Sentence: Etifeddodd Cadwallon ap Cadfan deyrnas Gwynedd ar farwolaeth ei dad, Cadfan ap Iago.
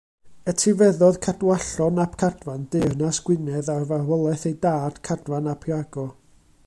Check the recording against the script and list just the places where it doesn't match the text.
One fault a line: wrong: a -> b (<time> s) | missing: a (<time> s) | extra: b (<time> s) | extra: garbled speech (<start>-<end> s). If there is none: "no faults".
no faults